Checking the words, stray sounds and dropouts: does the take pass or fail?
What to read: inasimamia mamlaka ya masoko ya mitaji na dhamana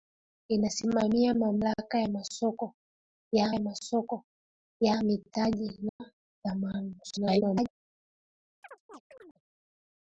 fail